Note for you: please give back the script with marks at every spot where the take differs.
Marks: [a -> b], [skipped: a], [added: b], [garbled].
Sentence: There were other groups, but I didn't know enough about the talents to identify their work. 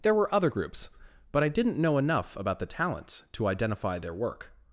There were other groups, but I didn't know enough about the talents to identify their work.